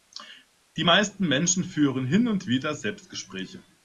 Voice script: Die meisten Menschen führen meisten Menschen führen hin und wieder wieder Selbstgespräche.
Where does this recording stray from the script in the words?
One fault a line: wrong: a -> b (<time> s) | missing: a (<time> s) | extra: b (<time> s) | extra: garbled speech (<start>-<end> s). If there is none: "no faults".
missing: meisten Menschen führen (2.0 s)
missing: wieder (2.7 s)